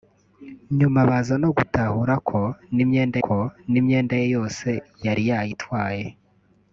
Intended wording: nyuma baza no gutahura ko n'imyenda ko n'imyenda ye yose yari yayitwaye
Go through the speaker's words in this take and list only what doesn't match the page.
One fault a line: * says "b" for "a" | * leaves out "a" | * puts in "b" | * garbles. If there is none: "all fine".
all fine